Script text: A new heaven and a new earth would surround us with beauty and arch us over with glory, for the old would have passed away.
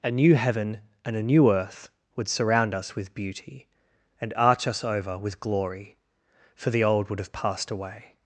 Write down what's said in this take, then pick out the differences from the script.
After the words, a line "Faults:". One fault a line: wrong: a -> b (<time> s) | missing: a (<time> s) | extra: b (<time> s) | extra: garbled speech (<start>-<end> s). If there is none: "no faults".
A new heaven and a new earth would surround us with beauty and arch us over with glory, for the old would have passed away.
Faults:
no faults